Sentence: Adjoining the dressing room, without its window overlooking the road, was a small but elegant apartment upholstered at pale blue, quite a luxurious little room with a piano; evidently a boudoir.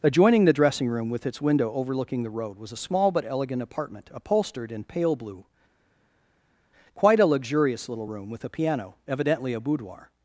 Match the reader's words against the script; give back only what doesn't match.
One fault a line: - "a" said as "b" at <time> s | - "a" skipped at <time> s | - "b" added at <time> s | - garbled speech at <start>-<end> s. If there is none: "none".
- "without" said as "with" at 1.1 s
- "at" said as "in" at 4.7 s